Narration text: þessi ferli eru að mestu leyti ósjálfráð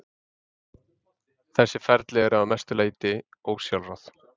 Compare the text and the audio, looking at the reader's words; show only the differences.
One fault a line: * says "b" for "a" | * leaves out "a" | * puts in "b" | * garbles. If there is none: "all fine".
all fine